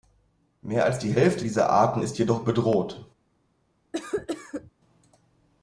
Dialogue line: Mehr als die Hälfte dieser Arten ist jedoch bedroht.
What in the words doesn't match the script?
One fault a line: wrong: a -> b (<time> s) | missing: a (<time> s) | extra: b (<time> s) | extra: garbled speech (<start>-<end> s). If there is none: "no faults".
no faults